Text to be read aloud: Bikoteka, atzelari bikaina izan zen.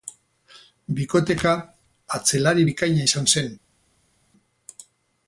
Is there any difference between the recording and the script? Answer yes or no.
no